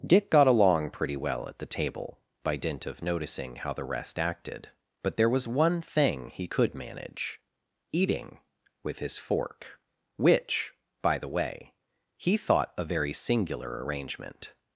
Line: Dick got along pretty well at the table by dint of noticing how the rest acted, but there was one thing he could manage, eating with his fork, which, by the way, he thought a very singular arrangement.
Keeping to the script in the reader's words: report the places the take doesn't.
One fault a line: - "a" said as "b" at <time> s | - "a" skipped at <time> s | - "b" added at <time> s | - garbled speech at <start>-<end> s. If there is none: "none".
none